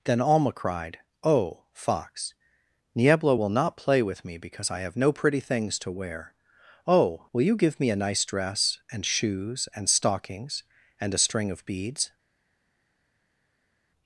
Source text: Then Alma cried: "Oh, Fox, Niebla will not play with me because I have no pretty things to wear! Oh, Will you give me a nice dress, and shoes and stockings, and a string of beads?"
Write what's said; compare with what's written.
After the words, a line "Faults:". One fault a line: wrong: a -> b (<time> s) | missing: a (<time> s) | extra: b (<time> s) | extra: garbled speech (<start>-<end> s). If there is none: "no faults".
Then Alma cried: "Oh, Fox, Niebla will not play with me because I have no pretty things to wear! Oh, Will you give me a nice dress, and shoes and stockings, and a string of beads?"
Faults:
no faults